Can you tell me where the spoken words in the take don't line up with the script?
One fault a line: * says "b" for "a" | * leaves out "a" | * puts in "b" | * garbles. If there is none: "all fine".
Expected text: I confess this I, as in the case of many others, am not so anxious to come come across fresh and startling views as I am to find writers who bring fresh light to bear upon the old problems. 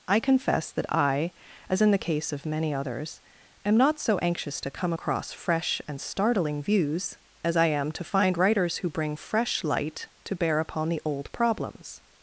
* says "that" for "this"
* leaves out "come"